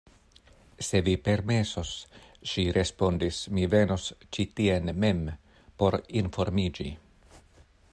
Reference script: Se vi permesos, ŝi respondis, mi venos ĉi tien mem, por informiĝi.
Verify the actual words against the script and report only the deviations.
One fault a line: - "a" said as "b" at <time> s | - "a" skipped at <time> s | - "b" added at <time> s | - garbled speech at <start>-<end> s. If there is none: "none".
none